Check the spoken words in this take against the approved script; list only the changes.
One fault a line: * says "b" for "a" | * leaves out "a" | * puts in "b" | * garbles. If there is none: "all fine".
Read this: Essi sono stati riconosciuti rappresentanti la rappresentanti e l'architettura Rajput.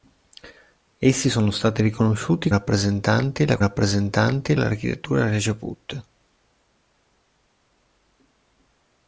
all fine